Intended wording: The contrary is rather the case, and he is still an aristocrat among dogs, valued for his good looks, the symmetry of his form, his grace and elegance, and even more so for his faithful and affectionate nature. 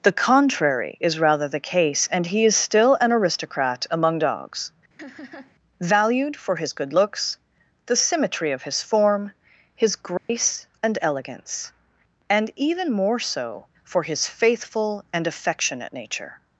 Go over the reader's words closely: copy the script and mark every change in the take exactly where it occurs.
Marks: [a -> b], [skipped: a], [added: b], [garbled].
The contrary is rather the case, and he is still an aristocrat among dogs, valued for his good looks, the symmetry of his form, his grace and elegance, and even more so for his faithful and affectionate nature.